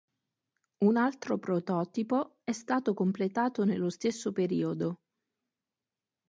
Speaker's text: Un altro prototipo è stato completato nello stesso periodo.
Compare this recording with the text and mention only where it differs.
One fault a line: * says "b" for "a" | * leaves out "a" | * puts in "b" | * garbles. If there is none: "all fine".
all fine